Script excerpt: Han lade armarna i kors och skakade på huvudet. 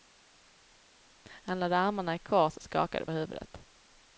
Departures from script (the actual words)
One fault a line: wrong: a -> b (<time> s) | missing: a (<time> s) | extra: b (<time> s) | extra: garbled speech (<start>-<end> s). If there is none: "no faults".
missing: på (3.0 s)